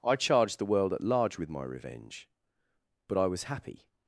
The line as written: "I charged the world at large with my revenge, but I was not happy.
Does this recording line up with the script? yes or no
no